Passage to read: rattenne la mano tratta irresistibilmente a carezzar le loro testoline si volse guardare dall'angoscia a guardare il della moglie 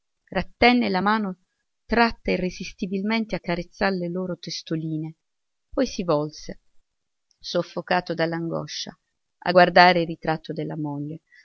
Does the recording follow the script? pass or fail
fail